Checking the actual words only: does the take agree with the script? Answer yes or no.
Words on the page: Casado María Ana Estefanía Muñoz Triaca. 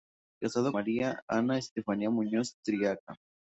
yes